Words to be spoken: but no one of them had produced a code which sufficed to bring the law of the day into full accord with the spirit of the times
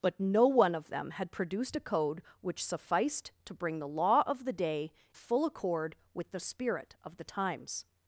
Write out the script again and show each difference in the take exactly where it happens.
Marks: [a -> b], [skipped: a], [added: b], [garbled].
but no one of them had produced a code which sufficed to bring the law of the day [skipped: into] full accord with the spirit of the times